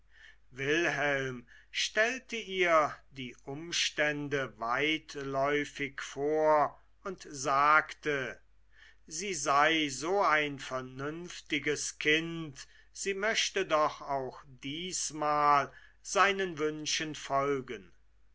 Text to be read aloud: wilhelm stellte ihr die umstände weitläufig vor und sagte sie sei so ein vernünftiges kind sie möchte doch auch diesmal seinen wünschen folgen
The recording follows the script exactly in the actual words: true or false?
true